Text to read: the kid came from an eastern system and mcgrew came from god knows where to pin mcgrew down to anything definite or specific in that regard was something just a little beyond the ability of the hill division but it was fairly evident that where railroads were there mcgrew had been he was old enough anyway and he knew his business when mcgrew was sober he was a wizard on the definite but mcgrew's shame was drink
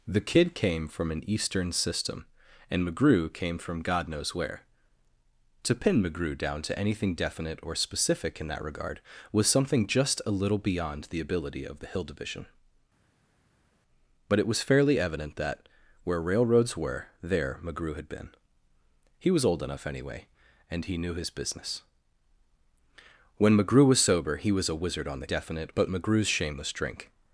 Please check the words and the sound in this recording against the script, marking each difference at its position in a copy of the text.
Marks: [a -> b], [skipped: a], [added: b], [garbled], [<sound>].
the kid came from an eastern system and mcgrew came from god knows where to pin mcgrew down to anything definite or specific in that regard was something just a little beyond the ability of the hill division but it was fairly evident that where railroads were there mcgrew had been he was old enough anyway and he knew his business when mcgrew was sober he was a wizard on the definite but mcgrew's shame was drink